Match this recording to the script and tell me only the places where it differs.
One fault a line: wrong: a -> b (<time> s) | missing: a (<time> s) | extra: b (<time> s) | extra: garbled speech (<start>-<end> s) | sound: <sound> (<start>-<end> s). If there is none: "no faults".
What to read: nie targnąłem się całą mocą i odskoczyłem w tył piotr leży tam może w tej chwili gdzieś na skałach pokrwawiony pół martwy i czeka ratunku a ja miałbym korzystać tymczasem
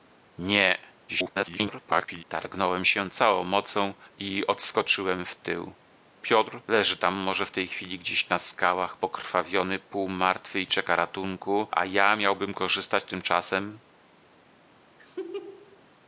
extra: garbled speech (1.1-2.2 s)
sound: laugh (15.0-15.8 s)